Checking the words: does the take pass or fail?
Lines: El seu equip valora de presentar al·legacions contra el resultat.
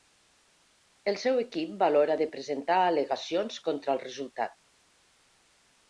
pass